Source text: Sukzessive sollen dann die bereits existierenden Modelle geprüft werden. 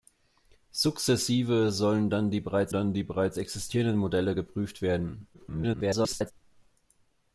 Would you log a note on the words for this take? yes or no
yes